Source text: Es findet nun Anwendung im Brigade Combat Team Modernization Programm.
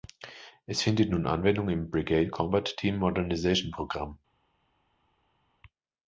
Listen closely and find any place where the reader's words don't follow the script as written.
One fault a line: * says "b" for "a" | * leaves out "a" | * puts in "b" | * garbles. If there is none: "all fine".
all fine